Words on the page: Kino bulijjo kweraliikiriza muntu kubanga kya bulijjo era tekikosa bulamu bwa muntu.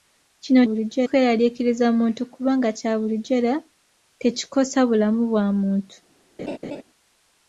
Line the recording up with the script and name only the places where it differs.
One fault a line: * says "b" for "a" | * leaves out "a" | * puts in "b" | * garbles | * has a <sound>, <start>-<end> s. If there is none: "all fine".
* has a laugh, 6.4-6.8 s